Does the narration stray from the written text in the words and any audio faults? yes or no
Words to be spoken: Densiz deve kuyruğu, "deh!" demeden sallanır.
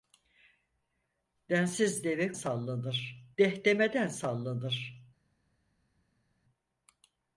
yes